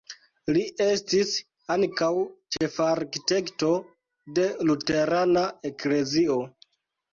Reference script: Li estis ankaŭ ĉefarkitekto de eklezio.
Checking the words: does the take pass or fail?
fail